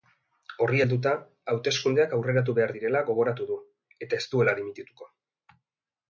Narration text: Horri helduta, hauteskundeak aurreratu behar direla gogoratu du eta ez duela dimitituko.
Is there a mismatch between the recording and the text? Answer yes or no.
no